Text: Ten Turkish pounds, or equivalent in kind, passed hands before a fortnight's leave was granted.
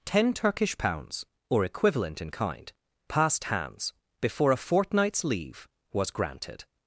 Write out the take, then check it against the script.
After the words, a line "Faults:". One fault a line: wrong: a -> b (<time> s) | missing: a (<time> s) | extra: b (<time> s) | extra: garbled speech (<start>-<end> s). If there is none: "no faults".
Ten Turkish pounds, or equivalent in kind, passed hands before a fortnight's leave was granted.
Faults:
no faults